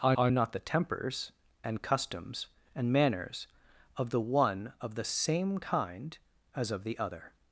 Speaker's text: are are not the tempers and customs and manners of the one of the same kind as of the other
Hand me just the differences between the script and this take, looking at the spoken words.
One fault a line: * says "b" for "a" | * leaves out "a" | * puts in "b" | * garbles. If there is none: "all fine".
all fine